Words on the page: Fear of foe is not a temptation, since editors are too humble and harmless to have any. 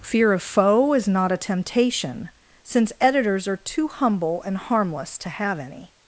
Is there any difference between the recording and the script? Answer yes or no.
no